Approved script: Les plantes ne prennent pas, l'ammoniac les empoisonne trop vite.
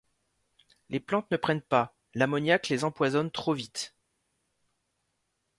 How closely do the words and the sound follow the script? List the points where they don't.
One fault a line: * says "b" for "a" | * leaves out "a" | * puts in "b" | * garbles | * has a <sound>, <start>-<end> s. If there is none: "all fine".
all fine